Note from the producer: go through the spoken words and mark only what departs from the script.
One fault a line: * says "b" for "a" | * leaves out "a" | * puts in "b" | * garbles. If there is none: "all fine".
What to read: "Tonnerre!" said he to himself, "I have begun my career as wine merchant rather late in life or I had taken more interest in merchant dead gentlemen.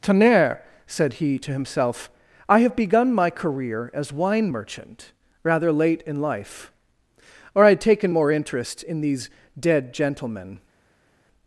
* says "these" for "merchant"